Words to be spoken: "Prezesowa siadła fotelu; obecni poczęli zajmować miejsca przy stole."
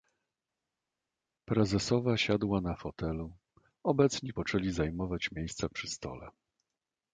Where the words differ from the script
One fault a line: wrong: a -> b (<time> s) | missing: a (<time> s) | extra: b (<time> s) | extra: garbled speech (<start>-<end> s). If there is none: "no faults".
extra: na (2.6 s)